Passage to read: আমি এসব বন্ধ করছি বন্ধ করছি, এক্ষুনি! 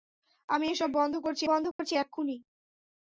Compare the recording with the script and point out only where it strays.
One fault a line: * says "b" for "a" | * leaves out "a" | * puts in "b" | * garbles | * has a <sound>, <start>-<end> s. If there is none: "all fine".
* has a dropout, 1.7-1.8 s